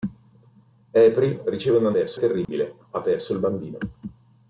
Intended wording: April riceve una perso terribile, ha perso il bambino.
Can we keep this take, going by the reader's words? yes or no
yes